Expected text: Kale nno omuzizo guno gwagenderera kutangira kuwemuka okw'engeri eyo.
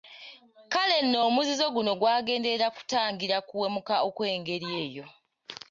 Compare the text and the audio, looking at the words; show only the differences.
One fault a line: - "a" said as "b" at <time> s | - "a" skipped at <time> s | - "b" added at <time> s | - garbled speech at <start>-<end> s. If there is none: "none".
none